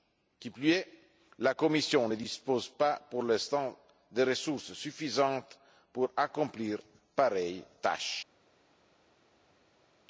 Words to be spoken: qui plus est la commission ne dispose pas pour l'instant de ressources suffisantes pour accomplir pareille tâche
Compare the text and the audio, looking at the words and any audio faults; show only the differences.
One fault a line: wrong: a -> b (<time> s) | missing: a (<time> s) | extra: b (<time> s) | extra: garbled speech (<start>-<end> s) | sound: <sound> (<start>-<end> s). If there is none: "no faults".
no faults